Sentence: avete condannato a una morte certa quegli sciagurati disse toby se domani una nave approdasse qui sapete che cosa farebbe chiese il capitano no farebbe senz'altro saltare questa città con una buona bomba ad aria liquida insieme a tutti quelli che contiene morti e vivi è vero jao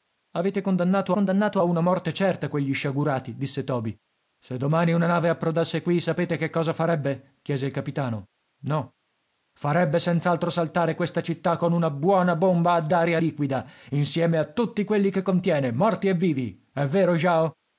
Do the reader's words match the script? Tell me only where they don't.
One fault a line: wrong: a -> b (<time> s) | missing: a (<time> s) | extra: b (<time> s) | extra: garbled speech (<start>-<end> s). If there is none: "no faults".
extra: condannato (1.1 s)